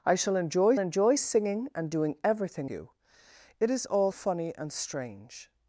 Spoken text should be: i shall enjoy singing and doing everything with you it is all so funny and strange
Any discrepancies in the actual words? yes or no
yes